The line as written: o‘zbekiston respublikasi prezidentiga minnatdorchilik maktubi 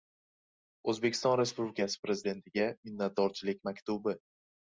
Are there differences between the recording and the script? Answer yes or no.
no